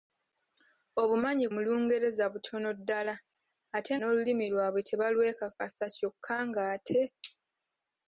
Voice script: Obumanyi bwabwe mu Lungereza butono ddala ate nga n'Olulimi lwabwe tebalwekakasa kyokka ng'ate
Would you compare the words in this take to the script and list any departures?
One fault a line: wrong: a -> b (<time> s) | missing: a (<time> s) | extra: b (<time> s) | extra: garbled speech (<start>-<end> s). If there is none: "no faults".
missing: bwabwe (1.4 s)
missing: nga (3.9 s)